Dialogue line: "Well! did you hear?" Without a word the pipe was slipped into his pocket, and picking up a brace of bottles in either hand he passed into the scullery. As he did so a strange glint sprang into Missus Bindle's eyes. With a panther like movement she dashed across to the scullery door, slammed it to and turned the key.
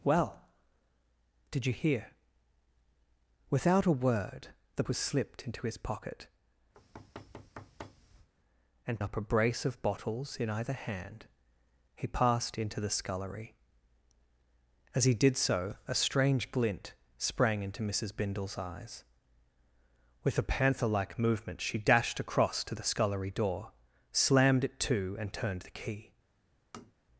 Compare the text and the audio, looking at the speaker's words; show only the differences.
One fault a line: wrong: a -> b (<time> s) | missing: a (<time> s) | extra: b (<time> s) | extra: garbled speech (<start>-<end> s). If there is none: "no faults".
missing: pipe (4.8 s)
missing: picking (9.0 s)